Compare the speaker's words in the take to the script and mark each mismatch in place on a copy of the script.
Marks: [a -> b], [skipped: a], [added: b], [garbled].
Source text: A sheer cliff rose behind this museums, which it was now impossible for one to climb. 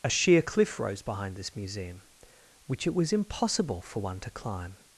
A sheer cliff rose behind this [museums, -> museum] which it was [skipped: now] impossible for one to climb.